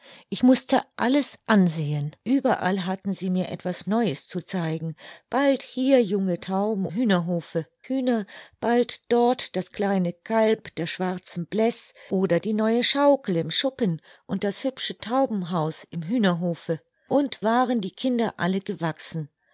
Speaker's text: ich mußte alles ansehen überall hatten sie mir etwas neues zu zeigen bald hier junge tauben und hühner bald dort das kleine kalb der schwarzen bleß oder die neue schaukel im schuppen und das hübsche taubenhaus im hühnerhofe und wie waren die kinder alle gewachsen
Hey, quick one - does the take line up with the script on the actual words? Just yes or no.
no